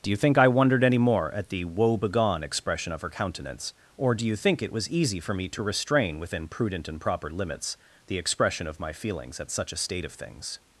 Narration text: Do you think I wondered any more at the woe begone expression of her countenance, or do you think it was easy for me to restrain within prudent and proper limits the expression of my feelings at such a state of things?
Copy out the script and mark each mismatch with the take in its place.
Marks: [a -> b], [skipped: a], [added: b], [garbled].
Do you think I wondered any more at the woe begone expression of her countenance, or do you think it was easy for me to restrain within prudent and proper limits the expression of my feelings at such a state of things?